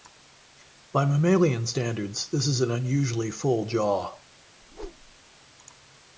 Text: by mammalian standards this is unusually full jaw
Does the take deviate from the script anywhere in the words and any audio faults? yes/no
yes